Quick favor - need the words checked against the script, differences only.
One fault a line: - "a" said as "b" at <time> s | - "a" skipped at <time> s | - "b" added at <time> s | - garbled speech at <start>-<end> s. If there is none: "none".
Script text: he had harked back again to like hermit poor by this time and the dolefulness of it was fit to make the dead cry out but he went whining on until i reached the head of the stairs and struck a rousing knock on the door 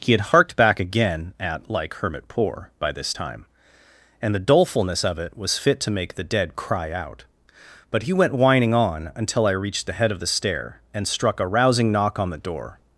- "to" said as "at" at 1.4 s
- "stairs" said as "stair" at 10.3 s